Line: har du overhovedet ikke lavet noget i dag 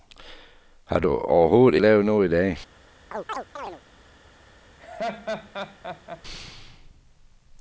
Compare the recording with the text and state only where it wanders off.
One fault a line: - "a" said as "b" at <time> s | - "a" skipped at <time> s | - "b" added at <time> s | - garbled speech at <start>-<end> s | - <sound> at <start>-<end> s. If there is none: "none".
- "ikke" skipped at 1.8 s
- chirp at 3.1-3.8 s
- laugh at 4.8-6.2 s